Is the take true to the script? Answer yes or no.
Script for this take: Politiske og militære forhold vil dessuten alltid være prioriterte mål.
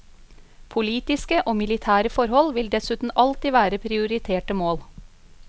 yes